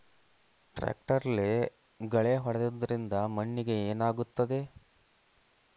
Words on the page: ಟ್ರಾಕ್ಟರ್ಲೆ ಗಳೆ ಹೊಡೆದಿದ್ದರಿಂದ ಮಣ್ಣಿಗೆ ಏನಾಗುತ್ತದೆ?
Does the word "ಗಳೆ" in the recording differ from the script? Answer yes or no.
no